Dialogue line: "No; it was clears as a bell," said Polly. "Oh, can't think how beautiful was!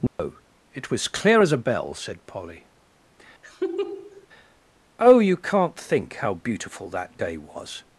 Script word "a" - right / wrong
right